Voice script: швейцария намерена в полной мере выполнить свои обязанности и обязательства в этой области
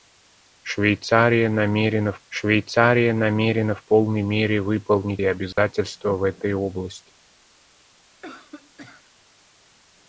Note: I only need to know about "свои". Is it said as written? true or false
false